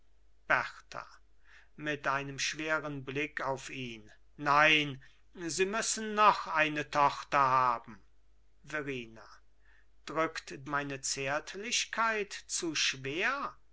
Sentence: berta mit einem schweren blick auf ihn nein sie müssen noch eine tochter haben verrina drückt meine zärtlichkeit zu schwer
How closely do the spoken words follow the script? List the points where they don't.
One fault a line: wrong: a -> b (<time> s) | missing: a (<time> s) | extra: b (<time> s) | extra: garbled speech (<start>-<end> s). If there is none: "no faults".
no faults